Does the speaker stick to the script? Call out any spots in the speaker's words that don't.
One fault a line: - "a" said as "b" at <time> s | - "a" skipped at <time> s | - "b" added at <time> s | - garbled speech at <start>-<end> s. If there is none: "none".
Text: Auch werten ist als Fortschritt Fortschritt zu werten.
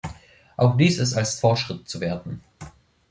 - "werten" said as "dies" at 0.8 s
- "Fortschritt" skipped at 1.9 s